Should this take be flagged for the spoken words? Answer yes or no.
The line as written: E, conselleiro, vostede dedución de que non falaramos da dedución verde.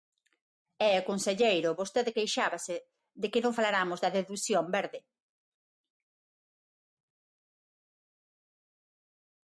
yes